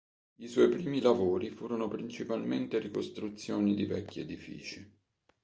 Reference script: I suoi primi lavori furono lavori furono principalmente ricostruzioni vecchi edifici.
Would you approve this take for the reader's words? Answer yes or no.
no